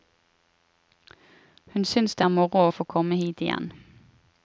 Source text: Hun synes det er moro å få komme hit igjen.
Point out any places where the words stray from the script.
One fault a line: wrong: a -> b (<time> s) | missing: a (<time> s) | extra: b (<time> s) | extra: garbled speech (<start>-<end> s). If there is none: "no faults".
no faults